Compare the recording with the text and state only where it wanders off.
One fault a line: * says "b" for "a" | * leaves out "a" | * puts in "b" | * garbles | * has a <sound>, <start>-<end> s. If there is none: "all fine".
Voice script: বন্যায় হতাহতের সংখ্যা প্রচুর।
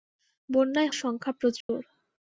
* leaves out "হতাহতের"
* has a dropout, 1.6-1.7 s